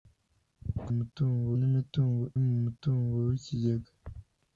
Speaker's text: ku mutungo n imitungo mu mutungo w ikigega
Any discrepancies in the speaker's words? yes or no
no